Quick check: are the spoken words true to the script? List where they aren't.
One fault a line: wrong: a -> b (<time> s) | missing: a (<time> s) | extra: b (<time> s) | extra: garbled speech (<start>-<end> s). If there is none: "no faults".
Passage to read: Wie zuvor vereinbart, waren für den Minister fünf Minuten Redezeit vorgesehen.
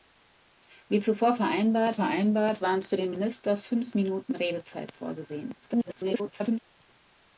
extra: vereinbart (1.9 s)
extra: garbled speech (5.6-6.6 s)